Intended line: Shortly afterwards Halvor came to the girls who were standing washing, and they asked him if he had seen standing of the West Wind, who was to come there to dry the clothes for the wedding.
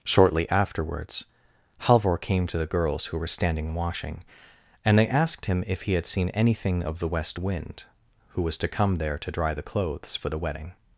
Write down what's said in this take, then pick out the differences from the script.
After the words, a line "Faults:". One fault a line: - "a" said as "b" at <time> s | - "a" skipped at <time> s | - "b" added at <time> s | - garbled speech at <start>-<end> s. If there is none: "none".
Shortly afterwards Halvor came to the girls who were standing washing, and they asked him if he had seen anything of the West Wind, who was to come there to dry the clothes for the wedding.
Faults:
- "standing" said as "anything" at 6.3 s